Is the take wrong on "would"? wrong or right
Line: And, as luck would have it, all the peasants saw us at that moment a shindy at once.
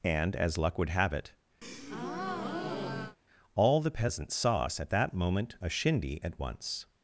right